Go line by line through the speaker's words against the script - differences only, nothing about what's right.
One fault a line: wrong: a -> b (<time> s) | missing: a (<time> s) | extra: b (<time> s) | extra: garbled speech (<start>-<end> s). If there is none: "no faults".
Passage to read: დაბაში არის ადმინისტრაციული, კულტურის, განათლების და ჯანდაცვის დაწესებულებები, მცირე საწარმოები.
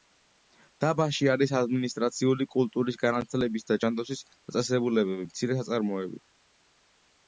no faults